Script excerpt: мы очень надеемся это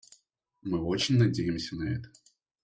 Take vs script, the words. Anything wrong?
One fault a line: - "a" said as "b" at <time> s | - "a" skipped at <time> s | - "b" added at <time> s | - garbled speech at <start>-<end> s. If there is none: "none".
- "на" added at 1.7 s